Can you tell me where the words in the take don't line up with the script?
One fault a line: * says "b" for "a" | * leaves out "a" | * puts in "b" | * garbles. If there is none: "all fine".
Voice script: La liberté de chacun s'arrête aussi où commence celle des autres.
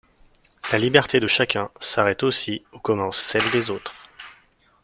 all fine